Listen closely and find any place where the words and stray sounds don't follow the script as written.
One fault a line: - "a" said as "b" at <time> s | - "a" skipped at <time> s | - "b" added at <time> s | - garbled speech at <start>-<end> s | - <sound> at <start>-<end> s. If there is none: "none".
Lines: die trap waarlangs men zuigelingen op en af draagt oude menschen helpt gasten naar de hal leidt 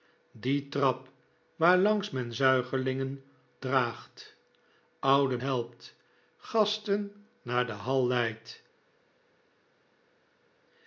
- "op en af" skipped at 3.2 s
- "menschen" skipped at 5.4 s